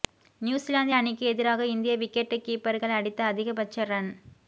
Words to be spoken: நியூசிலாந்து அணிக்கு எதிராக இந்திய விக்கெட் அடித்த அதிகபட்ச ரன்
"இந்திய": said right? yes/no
yes